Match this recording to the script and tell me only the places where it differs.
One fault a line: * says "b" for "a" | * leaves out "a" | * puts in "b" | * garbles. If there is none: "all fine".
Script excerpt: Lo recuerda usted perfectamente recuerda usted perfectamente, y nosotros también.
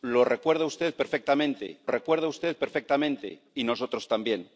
all fine